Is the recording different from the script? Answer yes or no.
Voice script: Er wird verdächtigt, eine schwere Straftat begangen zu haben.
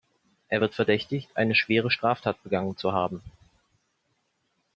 no